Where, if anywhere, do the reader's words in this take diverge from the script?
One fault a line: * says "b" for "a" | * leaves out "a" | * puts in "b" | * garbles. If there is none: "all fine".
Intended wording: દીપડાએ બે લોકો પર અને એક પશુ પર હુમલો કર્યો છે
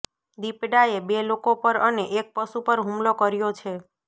all fine